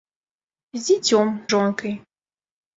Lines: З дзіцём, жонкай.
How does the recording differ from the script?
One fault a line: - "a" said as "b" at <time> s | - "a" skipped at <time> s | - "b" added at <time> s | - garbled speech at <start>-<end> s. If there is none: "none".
none